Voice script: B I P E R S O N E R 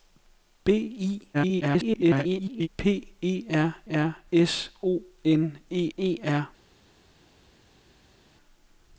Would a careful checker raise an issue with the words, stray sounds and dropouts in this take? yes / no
yes